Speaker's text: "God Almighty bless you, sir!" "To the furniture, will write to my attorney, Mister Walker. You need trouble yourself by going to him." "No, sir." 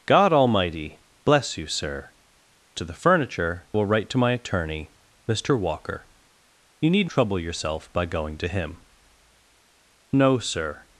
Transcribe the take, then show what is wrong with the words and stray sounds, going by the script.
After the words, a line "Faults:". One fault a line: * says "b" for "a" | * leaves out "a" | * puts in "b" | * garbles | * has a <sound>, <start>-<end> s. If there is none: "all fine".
"God Almighty bless you, sir!" "To the furniture, will write to my attorney, Mister Walker. You need trouble yourself by going to him." "No, sir."
Faults:
all fine